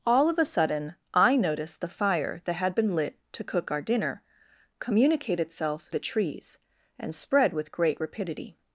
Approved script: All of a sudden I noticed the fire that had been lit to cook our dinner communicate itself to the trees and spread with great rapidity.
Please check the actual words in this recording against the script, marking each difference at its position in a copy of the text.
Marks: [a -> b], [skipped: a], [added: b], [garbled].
All of a sudden I noticed the fire that had been lit to cook our dinner communicate itself [skipped: to] the trees and spread with great rapidity.